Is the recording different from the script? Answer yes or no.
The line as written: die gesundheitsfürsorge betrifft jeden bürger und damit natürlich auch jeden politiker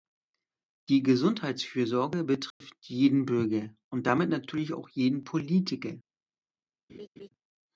no